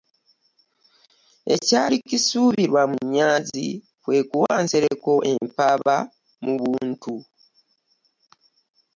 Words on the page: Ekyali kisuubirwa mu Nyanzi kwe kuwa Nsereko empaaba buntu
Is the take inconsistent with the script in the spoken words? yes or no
yes